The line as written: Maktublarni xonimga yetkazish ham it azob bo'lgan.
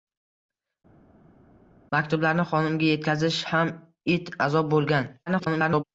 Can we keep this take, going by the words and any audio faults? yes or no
no